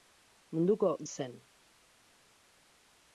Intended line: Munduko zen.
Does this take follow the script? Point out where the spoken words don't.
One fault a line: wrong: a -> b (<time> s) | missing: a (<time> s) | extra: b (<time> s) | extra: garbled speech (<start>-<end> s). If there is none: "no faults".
no faults